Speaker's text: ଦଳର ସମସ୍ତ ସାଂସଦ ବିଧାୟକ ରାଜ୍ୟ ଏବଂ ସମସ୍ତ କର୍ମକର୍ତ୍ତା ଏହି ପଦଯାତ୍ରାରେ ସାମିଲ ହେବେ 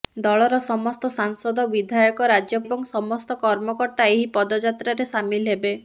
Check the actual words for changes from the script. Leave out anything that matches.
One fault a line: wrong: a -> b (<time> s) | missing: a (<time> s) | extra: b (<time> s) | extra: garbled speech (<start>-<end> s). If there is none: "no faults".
no faults